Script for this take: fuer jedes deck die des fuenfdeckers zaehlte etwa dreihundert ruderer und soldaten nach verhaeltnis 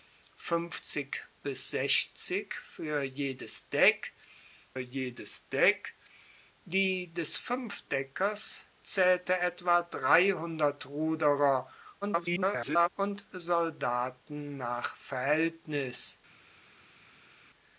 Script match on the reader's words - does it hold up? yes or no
no